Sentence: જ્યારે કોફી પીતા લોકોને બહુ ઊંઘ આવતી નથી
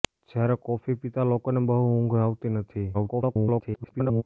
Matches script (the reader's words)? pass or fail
fail